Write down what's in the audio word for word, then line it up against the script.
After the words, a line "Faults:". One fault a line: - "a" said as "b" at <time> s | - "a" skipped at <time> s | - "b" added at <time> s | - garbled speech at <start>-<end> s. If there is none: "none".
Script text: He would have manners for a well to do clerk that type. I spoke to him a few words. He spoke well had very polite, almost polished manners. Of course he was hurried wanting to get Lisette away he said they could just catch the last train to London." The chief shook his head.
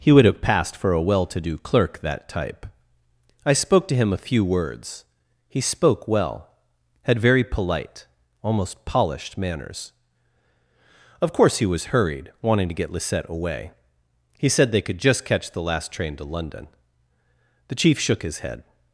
He would have passed for a well to do clerk that type. I spoke to him a few words. He spoke well had very polite, almost polished manners. Of course he was hurried wanting to get Lisette away he said they could just catch the last train to London." The chief shook his head.
Faults:
- "manners" said as "passed" at 0.4 s